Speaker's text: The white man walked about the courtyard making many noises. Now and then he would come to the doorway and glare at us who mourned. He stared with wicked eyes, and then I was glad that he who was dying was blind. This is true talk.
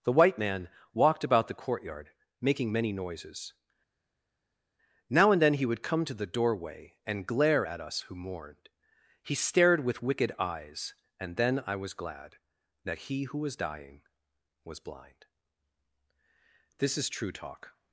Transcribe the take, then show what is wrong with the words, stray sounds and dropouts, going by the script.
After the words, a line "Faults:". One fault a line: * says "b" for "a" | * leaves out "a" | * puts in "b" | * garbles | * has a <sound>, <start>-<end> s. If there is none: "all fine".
The white man walked about the courtyard making many noises. Now and then he would come to the doorway and glare at us who mourned. He stared with wicked eyes, and then I was glad that he who was dying was blind. This is true talk.
Faults:
all fine